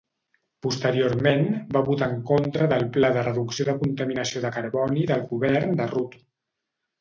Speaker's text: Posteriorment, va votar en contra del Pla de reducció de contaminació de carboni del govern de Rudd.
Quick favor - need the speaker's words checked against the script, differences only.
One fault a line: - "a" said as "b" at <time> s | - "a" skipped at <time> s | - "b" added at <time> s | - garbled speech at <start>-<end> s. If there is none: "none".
none